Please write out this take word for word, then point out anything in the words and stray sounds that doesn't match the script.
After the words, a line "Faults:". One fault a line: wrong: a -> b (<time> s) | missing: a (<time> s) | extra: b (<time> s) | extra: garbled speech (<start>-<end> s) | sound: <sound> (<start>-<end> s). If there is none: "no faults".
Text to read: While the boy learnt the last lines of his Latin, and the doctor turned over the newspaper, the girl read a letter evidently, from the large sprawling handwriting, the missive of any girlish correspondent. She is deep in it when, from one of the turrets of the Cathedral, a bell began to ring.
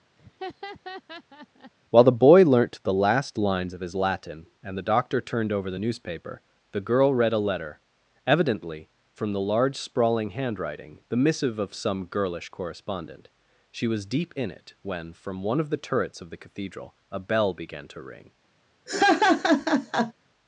While the boy learnt the last lines of his Latin, and the doctor turned over the newspaper, the girl read a letter evidently, from the large sprawling handwriting, the missive of some girlish correspondent. She was deep in it when, from one of the turrets of the Cathedral, a bell began to ring.
Faults:
sound: laugh (0.2-1.7 s)
wrong: any -> some (11.7 s)
wrong: is -> was (13.8 s)
sound: laugh (18.9-20.1 s)